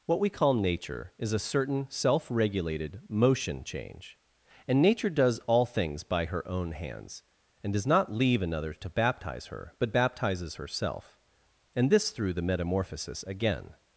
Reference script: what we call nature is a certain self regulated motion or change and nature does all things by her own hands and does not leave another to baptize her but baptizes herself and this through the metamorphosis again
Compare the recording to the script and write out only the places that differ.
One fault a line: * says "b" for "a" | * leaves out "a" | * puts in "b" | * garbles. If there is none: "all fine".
* leaves out "or"